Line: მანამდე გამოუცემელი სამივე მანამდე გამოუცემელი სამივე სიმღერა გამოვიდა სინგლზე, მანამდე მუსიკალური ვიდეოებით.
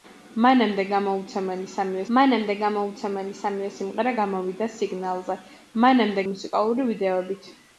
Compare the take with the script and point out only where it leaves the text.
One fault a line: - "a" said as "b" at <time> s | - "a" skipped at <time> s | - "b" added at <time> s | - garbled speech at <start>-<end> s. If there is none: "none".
none